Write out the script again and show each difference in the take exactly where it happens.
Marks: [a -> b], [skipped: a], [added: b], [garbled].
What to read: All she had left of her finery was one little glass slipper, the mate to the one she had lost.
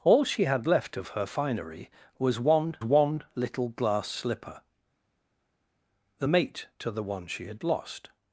All she had left of her finery was one [added: one] little glass slipper, the mate to the one she had lost.